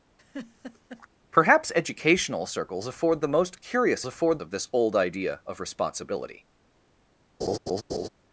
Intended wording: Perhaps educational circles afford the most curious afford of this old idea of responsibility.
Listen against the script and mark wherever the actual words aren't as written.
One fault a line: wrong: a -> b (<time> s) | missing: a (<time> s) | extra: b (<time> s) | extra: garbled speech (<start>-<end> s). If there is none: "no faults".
no faults